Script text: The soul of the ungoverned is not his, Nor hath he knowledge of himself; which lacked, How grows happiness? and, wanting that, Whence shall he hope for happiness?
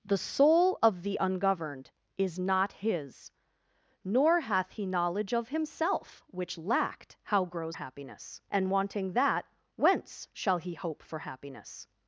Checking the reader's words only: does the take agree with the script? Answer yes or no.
yes